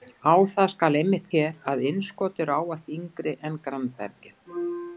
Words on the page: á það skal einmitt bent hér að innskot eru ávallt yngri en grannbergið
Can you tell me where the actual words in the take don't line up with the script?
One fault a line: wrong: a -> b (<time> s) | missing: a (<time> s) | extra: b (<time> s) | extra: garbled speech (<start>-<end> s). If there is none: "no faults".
missing: bent (1.3 s)